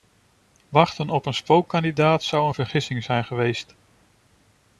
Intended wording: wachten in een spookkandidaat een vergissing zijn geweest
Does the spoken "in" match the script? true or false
false